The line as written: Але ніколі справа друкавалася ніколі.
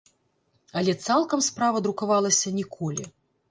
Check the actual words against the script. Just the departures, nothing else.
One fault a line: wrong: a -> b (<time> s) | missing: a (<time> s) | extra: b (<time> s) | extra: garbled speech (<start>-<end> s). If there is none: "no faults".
wrong: ніколі -> цалкам (1.1 s)